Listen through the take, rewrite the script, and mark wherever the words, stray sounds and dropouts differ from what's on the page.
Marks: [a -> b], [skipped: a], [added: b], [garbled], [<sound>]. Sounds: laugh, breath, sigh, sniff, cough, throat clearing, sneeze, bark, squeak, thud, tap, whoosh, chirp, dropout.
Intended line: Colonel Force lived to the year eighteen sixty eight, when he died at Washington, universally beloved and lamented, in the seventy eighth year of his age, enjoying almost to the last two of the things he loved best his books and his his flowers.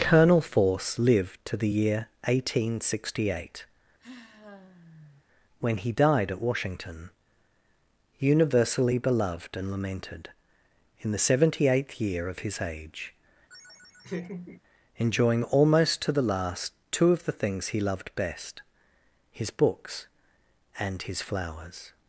Colonel Force lived to the year eighteen sixty eight, [sigh] when he died at Washington, universally beloved and lamented, in the seventy eighth year of his age, [laugh] enjoying almost to the last two of the things he loved best his books and his [skipped: his] flowers.